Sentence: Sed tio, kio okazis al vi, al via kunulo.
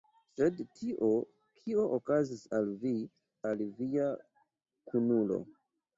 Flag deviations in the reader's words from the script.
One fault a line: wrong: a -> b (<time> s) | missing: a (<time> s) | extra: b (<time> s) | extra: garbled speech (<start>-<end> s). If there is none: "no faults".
no faults